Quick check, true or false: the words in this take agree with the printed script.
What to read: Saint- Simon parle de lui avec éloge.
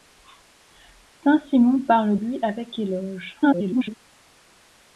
false